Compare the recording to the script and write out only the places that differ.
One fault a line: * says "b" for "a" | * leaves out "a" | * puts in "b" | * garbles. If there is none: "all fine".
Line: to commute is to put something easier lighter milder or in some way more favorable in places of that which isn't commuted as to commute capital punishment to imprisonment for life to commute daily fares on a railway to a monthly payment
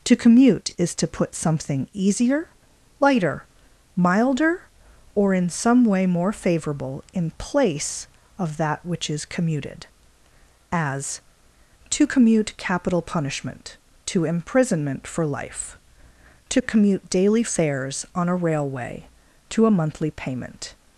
* says "place" for "places"
* says "is" for "isn't"